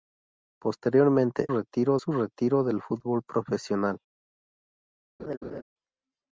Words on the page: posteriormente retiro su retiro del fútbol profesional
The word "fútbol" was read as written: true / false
true